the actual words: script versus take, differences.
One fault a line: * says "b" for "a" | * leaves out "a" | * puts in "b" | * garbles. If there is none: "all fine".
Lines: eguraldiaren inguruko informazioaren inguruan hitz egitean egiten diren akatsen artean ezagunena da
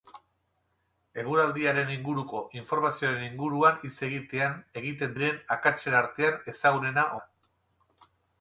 all fine